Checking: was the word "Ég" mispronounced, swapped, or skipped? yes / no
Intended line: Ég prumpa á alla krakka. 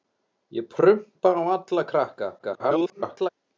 no